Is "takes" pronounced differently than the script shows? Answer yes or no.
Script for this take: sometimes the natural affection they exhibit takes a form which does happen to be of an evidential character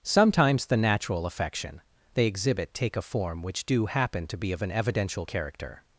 yes